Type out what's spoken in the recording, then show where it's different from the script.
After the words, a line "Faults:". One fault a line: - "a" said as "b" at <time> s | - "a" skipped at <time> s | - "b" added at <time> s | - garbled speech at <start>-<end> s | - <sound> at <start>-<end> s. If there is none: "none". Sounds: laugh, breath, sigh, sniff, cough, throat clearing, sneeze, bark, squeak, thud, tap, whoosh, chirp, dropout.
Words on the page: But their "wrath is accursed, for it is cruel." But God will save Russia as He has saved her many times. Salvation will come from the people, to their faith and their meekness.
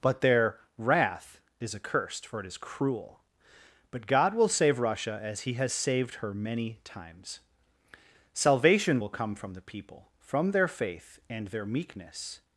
But their "wrath is accursed, for it is cruel." But God will save Russia as He has saved her many times. Salvation will come from the people, from their faith and their meekness.
Faults:
- "to" said as "from" at 10.2 s